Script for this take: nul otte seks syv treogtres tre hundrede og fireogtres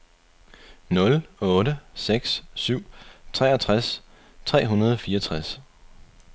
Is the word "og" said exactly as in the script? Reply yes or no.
yes